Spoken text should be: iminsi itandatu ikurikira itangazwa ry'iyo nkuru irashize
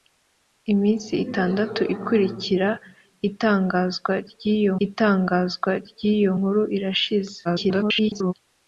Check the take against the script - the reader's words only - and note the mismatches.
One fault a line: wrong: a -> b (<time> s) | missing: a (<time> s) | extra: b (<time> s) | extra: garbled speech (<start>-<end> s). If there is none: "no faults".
extra: itangazwa ry'iyo (4.9 s)
extra: garbled speech (7.4-8.3 s)